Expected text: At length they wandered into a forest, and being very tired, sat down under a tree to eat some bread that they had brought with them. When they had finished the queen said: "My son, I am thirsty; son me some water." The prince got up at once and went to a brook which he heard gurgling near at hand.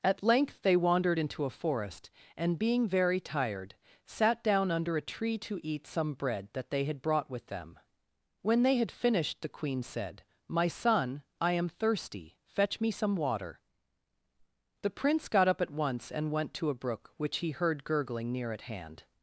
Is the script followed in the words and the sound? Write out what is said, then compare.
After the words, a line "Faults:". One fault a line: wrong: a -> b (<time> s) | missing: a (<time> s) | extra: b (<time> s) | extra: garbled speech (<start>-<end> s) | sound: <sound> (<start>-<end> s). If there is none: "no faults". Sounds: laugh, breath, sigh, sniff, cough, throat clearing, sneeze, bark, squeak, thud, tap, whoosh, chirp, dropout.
At length they wandered into a forest, and being very tired, sat down under a tree to eat some bread that they had brought with them. When they had finished the queen said: "My son, I am thirsty; fetch me some water." The prince got up at once and went to a brook which he heard gurgling near at hand.
Faults:
wrong: son -> fetch (12.4 s)